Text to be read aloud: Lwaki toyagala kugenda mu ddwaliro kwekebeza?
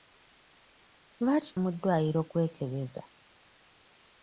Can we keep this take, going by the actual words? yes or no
no